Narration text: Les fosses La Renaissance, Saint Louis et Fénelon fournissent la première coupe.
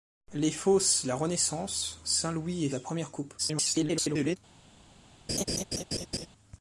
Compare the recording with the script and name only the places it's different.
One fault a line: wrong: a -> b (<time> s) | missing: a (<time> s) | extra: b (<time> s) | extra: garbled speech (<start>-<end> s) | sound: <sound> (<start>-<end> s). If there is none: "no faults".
missing: Fénelon fournissent (2.7 s)
extra: garbled speech (3.4-4.4 s)
sound: laugh (5.3-6.3 s)